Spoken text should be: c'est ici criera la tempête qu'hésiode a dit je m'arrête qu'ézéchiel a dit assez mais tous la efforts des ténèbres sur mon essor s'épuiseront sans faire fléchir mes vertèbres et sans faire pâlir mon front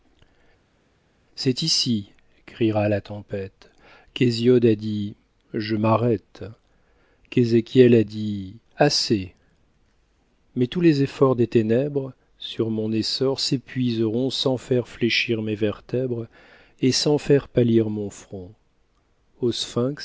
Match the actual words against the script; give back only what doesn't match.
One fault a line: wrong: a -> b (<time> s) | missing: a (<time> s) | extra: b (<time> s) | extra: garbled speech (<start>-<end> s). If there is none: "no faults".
wrong: la -> les (10.8 s)